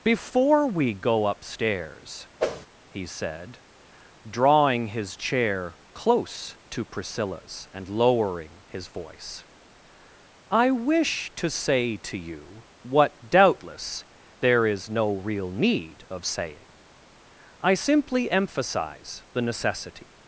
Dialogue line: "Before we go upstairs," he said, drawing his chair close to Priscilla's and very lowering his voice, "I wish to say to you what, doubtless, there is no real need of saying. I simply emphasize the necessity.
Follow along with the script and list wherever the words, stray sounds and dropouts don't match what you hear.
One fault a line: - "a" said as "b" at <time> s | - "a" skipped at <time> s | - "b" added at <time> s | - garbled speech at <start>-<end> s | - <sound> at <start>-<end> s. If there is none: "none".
- whoosh at 2.4-2.7 s
- "very" skipped at 7.9 s